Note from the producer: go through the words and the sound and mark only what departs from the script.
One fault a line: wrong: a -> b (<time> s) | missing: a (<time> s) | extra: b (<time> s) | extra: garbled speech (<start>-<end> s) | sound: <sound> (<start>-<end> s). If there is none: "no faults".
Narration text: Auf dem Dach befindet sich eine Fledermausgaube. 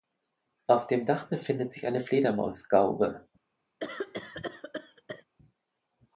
sound: cough (3.8-5.2 s)